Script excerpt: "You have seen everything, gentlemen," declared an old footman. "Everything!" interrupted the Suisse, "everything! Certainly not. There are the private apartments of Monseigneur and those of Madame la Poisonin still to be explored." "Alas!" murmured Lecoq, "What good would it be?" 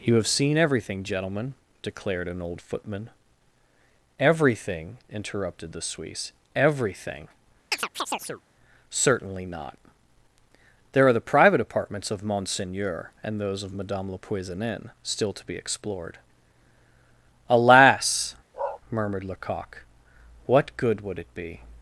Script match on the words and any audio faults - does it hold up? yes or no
no